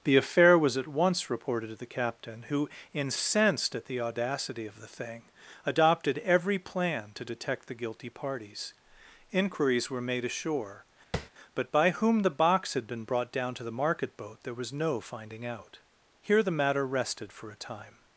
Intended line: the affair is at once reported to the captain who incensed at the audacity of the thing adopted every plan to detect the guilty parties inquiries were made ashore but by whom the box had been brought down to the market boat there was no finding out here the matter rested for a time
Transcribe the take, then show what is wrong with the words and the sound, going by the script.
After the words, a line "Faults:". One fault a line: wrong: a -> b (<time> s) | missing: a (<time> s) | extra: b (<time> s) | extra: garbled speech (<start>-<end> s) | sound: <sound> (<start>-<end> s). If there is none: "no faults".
the affair was at once reported to the captain who incensed at the audacity of the thing adopted every plan to detect the guilty parties inquiries were made ashore but by whom the box had been brought down to the market boat there was no finding out here the matter rested for a time
Faults:
wrong: is -> was (0.6 s)
sound: tap (11.1-11.3 s)